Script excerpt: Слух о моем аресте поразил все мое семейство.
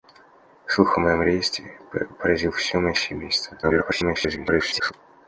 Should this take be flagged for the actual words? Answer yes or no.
yes